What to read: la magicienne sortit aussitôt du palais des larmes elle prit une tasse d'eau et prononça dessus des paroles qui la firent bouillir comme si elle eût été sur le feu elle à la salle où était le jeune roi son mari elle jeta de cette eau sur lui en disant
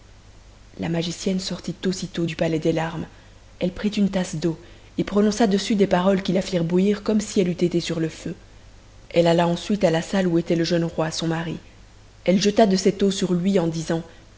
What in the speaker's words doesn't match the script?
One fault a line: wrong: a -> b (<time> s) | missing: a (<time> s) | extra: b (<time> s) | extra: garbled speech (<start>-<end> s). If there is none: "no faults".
extra: alla ensuite (9.3 s)